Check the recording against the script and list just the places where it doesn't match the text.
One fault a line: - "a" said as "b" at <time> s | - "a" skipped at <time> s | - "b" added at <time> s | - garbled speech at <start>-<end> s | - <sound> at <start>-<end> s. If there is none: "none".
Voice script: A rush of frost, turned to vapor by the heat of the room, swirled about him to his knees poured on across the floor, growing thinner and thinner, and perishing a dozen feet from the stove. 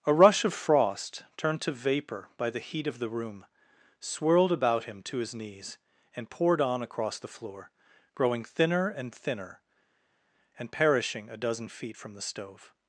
- "and" added at 6.2 s